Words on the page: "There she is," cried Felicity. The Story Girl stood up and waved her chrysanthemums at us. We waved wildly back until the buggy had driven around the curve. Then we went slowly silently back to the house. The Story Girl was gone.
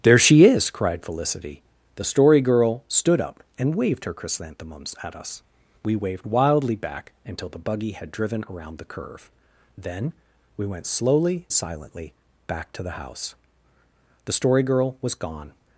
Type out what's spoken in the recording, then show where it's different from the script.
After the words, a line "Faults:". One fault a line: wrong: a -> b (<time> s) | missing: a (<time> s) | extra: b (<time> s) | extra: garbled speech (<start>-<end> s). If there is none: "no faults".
"There she is," cried Felicity. The Story Girl stood up and waved her chrysanthemums at us. We waved wildly back until the buggy had driven around the curve. Then we went slowly silently back to the house. The Story Girl was gone.
Faults:
no faults